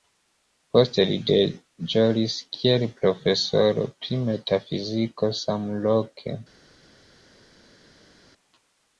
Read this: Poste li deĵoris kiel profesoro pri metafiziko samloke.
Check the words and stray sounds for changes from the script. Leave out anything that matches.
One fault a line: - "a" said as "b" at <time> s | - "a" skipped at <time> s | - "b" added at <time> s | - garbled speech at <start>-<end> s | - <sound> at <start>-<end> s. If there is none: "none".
none